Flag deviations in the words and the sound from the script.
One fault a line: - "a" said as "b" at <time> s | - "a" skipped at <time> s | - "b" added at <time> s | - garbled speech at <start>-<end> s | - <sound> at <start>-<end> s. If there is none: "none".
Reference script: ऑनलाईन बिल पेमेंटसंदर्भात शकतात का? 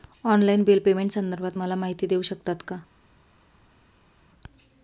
- "मला माहिती देऊ" added at 1.6 s